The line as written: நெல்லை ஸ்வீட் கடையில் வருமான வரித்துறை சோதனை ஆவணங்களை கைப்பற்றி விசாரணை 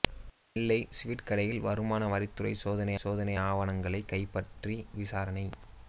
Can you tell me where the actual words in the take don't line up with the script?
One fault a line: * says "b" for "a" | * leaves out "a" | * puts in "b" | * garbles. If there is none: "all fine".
* puts in "சோதனை"